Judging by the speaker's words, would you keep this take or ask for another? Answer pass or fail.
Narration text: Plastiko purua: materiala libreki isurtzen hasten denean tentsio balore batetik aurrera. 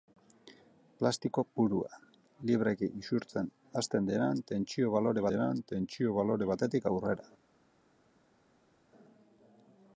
fail